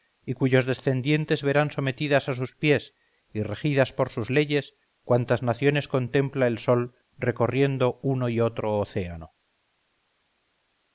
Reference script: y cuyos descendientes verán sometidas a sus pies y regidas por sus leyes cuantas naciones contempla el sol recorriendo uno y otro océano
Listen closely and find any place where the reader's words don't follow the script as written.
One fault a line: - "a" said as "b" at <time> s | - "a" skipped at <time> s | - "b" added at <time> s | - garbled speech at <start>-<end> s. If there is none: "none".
none